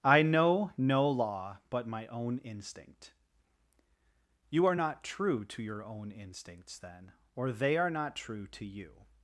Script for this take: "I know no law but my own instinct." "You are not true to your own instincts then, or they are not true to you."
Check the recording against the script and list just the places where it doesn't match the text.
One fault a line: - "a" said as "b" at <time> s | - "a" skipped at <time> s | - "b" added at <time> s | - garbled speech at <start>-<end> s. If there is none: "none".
none